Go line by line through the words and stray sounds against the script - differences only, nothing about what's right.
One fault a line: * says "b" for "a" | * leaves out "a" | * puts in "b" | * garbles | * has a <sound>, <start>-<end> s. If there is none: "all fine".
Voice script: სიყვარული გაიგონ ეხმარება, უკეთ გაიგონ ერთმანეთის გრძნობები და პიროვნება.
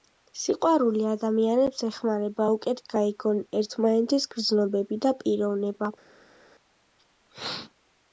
* says "ადამიანებს" for "გაიგონ"